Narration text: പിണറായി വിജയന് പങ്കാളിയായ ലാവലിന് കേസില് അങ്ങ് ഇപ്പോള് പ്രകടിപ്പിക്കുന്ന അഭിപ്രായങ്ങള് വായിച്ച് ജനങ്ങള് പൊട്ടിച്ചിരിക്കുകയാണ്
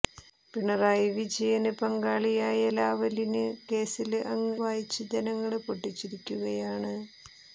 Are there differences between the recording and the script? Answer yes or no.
yes